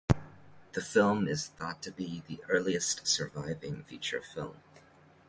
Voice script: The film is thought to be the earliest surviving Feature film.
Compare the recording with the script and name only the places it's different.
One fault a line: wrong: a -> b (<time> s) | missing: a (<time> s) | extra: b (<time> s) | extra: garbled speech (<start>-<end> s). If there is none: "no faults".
no faults